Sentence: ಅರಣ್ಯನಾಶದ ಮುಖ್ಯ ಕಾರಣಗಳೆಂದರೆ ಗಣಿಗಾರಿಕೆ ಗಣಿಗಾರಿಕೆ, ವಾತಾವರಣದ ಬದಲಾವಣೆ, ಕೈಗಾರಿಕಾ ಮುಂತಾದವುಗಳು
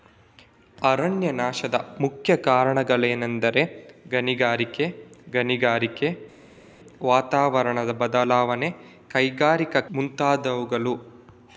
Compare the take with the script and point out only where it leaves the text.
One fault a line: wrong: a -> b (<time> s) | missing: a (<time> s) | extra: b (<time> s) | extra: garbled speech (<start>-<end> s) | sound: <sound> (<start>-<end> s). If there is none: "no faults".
no faults